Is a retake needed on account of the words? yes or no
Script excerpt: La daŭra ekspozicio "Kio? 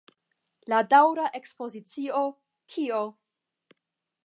no